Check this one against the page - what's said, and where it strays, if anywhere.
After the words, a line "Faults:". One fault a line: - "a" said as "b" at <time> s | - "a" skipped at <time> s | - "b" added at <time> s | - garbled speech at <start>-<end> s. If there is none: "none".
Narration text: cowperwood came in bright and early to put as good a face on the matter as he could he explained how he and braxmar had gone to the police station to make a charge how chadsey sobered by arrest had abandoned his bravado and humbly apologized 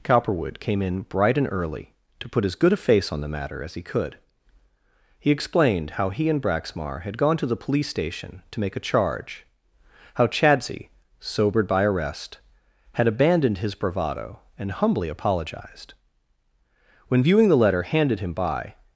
cowperwood came in bright and early to put as good a face on the matter as he could he explained how he and braxmar had gone to the police station to make a charge how chadsey sobered by arrest had abandoned his bravado and humbly apologized when viewing the letter handed him by
Faults:
- "when viewing the letter handed him by" added at 17.1 s